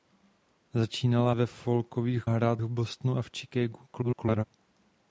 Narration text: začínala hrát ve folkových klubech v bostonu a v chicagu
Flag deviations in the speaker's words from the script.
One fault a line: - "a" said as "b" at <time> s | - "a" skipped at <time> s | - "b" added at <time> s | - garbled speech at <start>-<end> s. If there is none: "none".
- "hrát" skipped at 1.3 s
- "klubech" said as "hrát" at 2.3 s
- garbled speech at 3.9-4.4 s